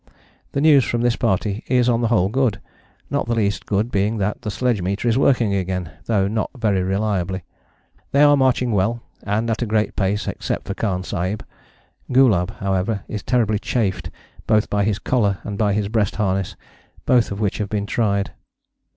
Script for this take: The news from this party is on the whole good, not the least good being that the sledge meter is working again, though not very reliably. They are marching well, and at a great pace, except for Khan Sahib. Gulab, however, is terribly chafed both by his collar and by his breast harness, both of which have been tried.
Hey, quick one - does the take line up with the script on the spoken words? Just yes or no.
yes